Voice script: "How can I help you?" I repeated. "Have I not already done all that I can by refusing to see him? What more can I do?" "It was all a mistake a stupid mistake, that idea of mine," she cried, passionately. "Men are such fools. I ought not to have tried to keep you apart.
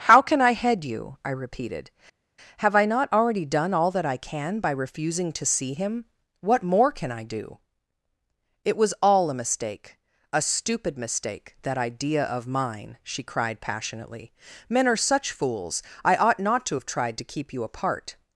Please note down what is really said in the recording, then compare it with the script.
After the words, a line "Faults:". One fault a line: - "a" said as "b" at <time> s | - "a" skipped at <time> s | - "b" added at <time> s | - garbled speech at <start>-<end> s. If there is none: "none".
"How can I head you?" I repeated. "Have I not already done all that I can by refusing to see him? What more can I do?" "It was all a mistake a stupid mistake, that idea of mine," she cried, passionately. "Men are such fools. I ought not to have tried to keep you apart.
Faults:
- "help" said as "head" at 0.5 s